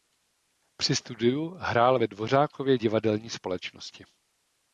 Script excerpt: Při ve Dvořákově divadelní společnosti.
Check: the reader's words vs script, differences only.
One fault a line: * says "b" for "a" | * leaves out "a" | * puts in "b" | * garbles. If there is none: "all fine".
* puts in "studiu hrál"